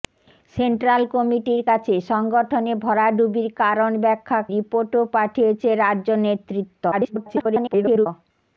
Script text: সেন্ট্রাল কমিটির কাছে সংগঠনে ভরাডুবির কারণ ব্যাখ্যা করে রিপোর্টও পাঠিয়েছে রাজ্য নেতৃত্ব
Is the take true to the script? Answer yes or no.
no